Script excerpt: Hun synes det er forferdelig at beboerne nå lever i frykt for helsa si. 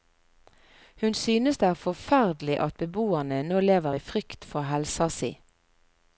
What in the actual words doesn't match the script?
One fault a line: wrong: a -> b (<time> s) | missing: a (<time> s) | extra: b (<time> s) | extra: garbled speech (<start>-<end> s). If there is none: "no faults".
no faults